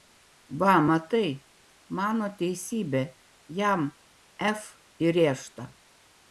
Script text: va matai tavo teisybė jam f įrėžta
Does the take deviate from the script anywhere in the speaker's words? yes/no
yes